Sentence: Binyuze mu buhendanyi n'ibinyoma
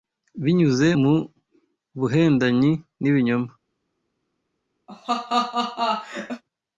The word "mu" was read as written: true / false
true